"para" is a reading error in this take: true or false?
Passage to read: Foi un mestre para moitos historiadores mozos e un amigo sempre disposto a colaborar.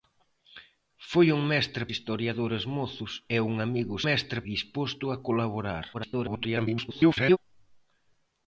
true